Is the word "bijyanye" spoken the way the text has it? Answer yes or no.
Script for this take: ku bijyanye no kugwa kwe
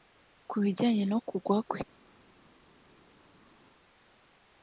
yes